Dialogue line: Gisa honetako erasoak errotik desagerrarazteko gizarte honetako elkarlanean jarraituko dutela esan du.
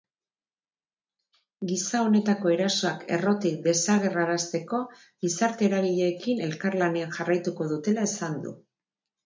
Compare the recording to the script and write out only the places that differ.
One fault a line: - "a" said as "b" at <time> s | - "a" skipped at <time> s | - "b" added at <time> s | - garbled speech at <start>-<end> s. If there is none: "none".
- "honetako" said as "eragileekin" at 5.7 s